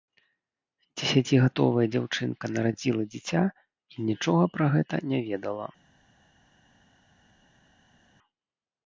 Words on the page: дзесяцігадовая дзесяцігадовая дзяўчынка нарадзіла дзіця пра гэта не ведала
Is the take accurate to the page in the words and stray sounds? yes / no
no